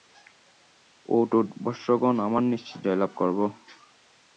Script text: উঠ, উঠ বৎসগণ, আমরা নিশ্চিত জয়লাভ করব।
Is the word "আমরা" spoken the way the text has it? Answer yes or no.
yes